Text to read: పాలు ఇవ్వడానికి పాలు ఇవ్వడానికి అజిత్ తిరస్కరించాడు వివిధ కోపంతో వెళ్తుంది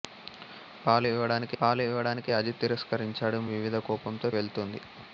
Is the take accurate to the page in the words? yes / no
yes